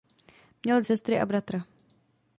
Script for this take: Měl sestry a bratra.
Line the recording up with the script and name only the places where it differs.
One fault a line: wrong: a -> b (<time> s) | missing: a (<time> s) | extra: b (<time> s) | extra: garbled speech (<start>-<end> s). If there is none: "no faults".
no faults